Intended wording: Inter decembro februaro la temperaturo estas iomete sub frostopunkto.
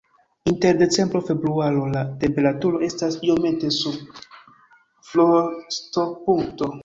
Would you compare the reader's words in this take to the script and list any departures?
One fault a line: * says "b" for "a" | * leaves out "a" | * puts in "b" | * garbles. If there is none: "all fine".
all fine